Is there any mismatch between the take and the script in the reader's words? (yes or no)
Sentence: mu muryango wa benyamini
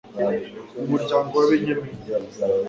no